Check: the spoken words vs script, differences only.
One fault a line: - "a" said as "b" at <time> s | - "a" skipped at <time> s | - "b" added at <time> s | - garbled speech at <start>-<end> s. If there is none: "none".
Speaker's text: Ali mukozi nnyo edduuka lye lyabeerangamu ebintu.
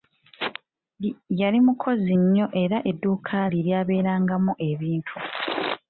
- "Ali" said as "Yali" at 1.4 s
- "era" added at 2.6 s